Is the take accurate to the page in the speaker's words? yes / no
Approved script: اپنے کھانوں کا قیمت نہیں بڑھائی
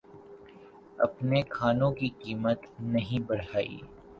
no